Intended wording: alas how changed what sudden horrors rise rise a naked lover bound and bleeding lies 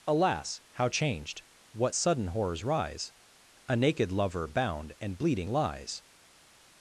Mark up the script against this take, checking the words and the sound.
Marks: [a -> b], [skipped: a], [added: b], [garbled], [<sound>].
alas how changed what sudden horrors rise [skipped: rise] a naked lover bound and bleeding lies